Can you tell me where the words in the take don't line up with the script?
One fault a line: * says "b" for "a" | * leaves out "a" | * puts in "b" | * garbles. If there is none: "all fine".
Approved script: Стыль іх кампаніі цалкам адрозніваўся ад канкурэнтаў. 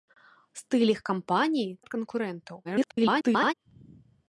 * leaves out "цалкам адрозніваўся"
* garbles